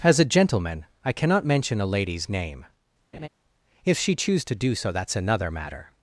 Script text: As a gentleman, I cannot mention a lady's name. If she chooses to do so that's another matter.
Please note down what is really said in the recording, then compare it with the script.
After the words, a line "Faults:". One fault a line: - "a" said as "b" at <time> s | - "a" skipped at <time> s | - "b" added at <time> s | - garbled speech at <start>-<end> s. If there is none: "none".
As a gentleman, I cannot mention a lady's name. If she choose to do so that's another matter.
Faults:
- "chooses" said as "choose" at 4.1 s